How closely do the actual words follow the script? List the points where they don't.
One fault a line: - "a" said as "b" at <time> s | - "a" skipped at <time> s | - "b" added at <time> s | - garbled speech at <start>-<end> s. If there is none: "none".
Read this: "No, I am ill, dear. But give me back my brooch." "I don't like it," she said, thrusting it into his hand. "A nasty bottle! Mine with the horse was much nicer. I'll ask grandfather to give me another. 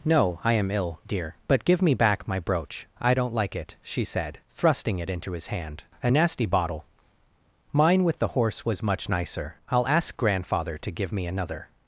none